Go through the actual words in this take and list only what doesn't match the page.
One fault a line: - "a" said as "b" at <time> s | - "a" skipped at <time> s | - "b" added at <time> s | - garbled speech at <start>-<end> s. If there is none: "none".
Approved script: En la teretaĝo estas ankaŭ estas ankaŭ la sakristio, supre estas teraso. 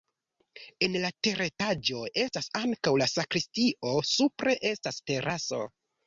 - "estas ankaŭ" skipped at 2.9 s